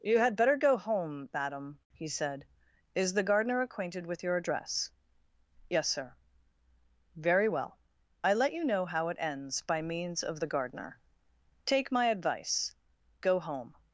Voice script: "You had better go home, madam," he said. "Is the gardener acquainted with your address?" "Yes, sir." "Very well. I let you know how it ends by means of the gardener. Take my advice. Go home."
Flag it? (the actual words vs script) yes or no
no